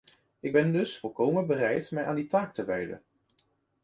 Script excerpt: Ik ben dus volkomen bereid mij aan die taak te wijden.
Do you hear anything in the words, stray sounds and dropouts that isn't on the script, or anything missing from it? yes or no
no